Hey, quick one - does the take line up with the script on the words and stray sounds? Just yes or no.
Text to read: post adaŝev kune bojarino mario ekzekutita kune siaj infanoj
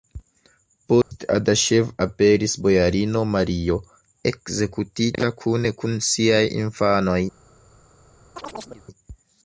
no